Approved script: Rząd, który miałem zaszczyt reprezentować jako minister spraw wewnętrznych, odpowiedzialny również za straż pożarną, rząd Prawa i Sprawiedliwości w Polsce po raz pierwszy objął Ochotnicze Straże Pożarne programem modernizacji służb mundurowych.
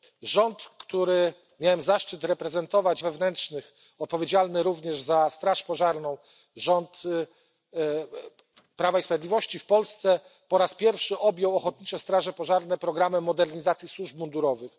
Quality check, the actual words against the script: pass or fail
fail